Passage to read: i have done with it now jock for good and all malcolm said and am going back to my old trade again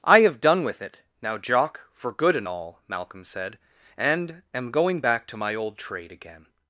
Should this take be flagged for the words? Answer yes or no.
no